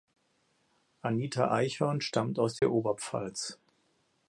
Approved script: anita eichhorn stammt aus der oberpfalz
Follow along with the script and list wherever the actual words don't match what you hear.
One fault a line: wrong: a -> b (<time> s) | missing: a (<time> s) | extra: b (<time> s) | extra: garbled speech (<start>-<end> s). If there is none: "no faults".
no faults